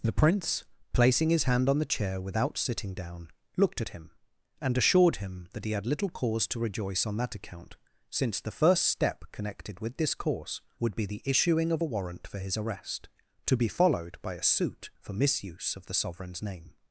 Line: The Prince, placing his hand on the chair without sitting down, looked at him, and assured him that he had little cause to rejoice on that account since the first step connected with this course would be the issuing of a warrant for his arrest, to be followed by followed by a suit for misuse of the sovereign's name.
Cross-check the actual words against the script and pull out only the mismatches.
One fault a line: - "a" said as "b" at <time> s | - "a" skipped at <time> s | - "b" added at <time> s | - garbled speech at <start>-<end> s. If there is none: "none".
- "followed by" skipped at 14.3 s